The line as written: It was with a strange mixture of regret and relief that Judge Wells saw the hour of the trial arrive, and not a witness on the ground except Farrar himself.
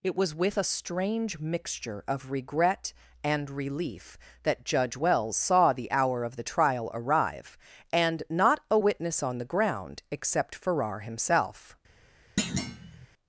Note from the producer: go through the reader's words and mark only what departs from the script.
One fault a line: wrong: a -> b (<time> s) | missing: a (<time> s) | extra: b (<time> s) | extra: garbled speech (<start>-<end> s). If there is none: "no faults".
no faults